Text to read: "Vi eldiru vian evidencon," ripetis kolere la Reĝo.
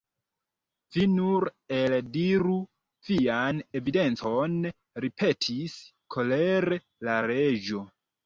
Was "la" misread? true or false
false